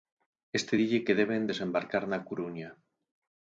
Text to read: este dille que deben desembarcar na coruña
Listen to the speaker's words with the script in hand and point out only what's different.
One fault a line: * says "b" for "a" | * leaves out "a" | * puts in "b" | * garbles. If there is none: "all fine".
all fine